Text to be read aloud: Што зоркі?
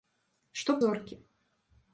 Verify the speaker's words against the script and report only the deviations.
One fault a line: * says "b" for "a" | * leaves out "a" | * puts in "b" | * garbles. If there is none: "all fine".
all fine